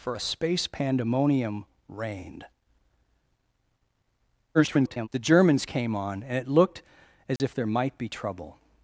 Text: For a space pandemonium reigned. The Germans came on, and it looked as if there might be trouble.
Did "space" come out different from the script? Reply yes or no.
no